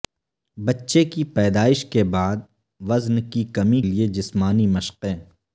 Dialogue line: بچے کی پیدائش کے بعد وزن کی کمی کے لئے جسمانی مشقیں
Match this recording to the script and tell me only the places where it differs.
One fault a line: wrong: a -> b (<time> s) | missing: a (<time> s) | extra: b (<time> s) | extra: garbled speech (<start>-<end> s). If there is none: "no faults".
missing: کے (3.8 s)